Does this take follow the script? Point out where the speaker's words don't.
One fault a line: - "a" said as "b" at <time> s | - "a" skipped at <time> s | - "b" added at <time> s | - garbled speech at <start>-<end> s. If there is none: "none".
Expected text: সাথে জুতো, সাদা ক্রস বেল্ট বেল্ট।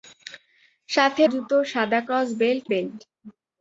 none